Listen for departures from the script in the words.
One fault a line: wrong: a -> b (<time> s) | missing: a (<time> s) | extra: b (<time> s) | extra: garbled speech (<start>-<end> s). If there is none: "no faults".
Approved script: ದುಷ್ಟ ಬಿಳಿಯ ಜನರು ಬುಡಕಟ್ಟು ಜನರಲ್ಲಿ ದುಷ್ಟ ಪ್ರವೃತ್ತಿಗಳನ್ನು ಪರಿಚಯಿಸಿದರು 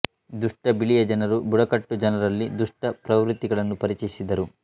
no faults